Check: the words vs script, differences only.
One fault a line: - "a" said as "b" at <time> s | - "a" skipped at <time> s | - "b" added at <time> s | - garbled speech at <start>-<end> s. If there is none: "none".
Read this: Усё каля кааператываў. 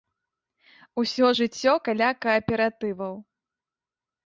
- "жыццё" added at 1.4 s